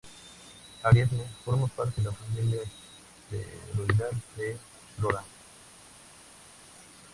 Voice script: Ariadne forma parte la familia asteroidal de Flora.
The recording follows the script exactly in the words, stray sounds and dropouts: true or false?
true